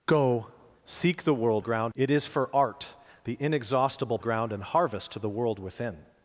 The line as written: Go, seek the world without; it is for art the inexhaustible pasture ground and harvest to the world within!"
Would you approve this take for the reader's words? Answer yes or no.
no